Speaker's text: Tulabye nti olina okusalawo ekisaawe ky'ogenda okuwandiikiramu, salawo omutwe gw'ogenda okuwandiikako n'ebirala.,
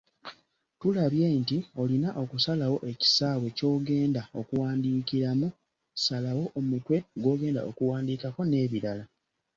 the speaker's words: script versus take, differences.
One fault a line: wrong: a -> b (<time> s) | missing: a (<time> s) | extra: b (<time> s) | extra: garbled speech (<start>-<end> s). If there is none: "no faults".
no faults